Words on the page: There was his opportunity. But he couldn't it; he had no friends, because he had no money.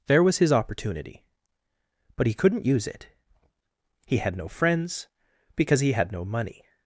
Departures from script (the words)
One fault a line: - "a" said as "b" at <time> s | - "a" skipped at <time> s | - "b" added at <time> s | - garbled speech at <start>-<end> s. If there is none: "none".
- "use" added at 2.6 s